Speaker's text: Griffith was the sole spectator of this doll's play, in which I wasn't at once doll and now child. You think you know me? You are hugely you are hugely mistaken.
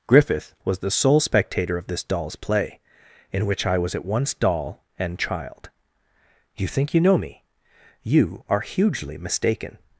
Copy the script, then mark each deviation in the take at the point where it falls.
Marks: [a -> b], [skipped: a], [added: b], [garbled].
Griffith was the sole spectator of this doll's play, in which I [wasn't -> was] at once doll and [skipped: now] child. You think you know me? You are hugely [skipped: you are hugely] mistaken.